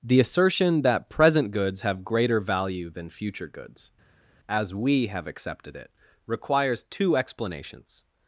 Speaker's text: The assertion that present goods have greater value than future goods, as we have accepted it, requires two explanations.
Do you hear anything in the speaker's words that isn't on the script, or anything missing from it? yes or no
no